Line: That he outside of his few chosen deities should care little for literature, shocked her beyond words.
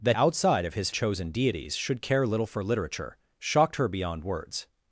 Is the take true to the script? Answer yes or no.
no